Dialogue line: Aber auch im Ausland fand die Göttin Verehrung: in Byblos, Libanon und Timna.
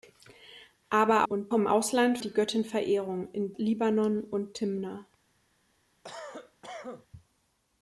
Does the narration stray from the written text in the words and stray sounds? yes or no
yes